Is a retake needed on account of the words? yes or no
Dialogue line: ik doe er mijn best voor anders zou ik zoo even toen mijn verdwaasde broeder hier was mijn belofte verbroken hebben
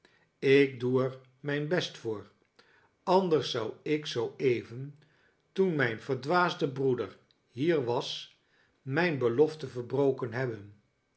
no